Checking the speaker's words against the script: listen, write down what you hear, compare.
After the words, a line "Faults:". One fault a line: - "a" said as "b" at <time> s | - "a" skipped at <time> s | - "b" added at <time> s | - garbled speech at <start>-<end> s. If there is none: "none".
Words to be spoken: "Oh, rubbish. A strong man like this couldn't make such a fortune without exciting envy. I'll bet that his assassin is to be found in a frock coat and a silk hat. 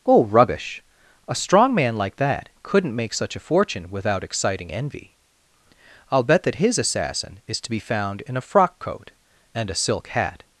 "Oh, rubbish. A strong man like that couldn't make such a fortune without exciting envy. I'll bet that his assassin is to be found in a frock coat and a silk hat.
Faults:
- "this" said as "that" at 2.2 s